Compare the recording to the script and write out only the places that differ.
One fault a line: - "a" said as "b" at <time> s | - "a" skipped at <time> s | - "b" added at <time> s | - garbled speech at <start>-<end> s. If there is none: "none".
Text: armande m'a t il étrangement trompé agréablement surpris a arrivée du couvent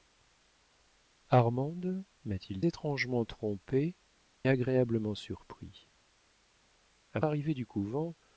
none